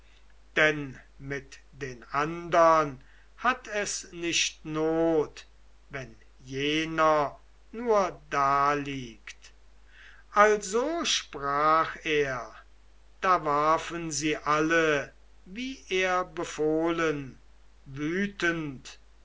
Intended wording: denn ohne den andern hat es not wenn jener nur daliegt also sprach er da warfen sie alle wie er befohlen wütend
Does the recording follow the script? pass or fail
fail